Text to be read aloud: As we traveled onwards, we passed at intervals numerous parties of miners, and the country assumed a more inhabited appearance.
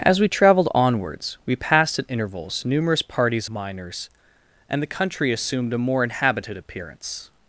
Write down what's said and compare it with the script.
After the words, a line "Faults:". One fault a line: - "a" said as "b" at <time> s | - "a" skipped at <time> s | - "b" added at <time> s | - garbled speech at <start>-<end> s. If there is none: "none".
As we traveled onwards, we passed at intervals numerous parties miners, and the country assumed a more inhabited appearance.
Faults:
- "of" skipped at 3.5 s